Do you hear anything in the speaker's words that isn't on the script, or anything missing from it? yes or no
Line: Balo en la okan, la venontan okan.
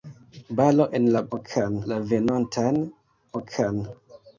no